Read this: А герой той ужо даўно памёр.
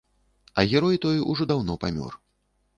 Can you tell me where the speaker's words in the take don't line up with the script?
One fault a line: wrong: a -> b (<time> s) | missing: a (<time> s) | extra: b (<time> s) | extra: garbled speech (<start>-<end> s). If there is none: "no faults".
no faults